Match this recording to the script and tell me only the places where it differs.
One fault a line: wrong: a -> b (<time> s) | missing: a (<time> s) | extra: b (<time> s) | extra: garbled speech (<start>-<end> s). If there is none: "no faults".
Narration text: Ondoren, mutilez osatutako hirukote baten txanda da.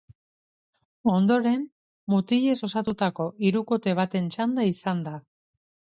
extra: izan (4.7 s)